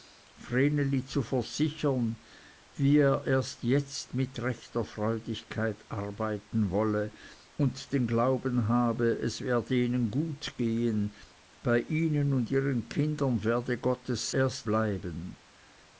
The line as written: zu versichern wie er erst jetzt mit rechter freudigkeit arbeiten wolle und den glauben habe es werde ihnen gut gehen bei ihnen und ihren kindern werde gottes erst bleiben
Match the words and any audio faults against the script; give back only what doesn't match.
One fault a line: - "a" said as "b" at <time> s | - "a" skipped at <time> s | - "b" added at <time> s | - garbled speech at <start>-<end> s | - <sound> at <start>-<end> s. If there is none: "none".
none